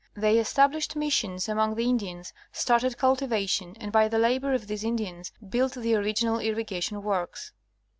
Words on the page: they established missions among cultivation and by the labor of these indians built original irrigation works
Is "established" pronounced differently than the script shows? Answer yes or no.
no